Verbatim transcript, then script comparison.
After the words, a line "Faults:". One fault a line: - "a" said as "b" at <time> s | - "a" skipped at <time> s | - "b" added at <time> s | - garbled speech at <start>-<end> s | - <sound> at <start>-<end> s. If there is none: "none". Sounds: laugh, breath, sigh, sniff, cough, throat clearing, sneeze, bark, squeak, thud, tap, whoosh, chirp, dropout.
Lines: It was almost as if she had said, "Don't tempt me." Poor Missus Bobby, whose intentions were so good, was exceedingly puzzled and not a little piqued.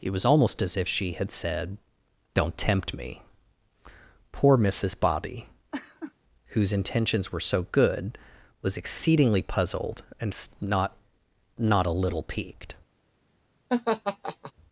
It was almost as if she had said, "Don't tempt me." Poor Missus Bobby, whose intentions were so good, was exceedingly puzzled and not not a little piqued.
Faults:
- laugh at 5.7-6.1 s
- "not" added at 11.6 s
- laugh at 13.7-14.5 s